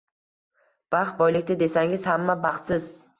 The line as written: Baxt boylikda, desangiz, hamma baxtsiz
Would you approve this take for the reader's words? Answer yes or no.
yes